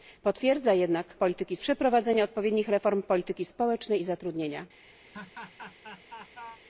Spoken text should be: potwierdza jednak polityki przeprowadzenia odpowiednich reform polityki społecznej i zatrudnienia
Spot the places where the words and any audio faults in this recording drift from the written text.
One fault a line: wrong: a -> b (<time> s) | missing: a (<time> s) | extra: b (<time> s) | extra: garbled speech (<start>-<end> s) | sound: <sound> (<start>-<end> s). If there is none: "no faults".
sound: laugh (5.1-6.6 s)